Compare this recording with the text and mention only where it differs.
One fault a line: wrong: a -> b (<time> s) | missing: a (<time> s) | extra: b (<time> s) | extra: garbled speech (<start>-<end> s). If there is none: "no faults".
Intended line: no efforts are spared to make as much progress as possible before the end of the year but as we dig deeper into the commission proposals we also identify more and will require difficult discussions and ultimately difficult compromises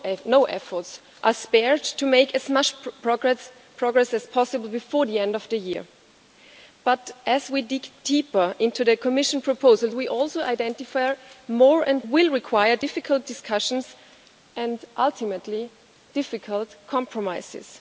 no faults